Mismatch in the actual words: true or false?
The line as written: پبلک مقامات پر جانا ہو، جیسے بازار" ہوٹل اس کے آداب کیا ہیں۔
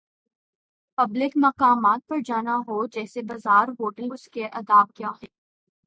false